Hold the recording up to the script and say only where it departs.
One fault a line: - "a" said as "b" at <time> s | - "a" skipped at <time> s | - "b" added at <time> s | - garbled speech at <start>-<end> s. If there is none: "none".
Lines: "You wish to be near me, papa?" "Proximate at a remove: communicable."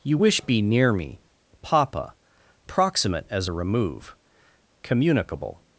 - "to" skipped at 0.4 s
- "at" said as "as" at 3.3 s